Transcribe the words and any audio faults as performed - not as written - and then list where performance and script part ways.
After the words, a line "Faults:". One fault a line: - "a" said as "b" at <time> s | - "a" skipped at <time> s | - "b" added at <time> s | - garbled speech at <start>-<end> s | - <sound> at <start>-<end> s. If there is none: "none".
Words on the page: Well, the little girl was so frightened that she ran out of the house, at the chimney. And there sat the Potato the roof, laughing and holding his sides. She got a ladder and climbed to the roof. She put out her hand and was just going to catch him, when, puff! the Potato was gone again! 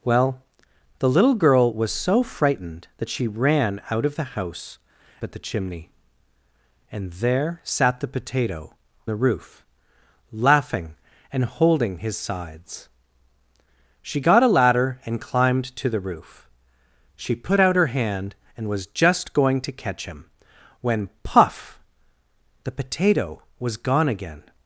Well, the little girl was so frightened that she ran out of the house, at the chimney. And there sat the Potato the roof, laughing and holding his sides. She got a ladder and climbed to the roof. She put out her hand and was just going to catch him, when, puff! the Potato was gone again!
Faults:
none